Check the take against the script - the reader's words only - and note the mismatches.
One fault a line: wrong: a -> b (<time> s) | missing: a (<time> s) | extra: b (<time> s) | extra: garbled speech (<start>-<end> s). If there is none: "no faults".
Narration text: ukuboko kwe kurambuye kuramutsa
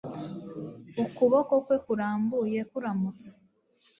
no faults